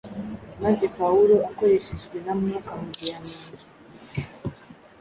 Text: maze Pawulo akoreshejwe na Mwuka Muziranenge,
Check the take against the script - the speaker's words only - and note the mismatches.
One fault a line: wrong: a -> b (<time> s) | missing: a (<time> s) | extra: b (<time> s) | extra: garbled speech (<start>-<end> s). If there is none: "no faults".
no faults